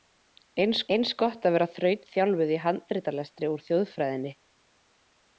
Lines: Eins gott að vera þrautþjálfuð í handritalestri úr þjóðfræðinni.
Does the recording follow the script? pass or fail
fail